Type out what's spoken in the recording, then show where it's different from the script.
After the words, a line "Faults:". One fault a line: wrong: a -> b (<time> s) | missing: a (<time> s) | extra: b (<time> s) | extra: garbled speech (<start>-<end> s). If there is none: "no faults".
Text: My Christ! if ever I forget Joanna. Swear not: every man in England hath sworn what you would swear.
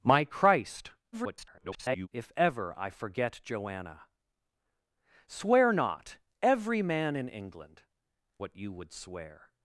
My Christ! [garbled] if ever I forget Joanna. Swear not: every man in England what you would swear.
Faults:
extra: garbled speech (1.1-2.1 s)
missing: hath sworn (7.8 s)